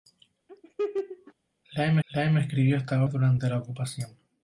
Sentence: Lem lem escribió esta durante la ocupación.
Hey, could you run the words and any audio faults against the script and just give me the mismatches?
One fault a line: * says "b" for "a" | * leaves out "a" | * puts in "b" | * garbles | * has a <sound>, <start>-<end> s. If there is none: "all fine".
* has a laugh, 0.5-1.3 s